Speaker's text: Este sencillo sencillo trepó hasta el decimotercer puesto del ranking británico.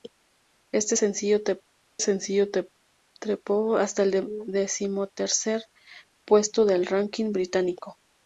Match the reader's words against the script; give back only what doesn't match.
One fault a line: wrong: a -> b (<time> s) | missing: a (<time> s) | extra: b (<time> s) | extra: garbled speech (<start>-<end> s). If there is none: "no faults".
no faults